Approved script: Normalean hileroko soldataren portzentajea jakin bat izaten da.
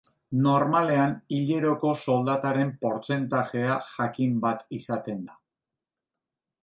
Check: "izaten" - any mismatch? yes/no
no